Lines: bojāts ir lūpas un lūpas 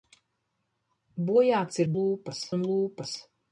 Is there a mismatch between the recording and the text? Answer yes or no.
no